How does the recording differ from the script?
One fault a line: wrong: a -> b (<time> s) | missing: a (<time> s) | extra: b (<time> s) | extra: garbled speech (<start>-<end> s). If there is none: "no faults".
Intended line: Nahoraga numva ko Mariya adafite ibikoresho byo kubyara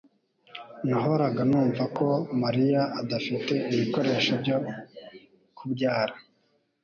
no faults